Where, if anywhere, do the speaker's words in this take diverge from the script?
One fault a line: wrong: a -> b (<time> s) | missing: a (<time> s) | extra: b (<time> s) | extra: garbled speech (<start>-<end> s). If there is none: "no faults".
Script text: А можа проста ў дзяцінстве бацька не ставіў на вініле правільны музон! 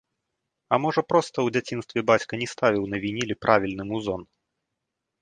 no faults